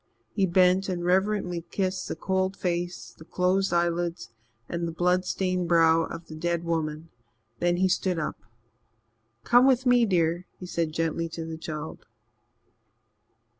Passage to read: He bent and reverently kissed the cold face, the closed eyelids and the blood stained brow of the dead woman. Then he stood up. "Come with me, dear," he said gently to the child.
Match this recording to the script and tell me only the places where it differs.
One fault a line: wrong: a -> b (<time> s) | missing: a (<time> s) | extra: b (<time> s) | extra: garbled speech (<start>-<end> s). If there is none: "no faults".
no faults